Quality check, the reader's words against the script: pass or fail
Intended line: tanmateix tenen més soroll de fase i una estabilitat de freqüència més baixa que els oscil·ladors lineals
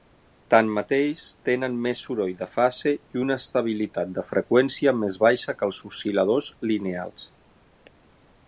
pass